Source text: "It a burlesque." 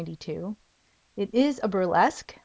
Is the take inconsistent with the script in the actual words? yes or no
yes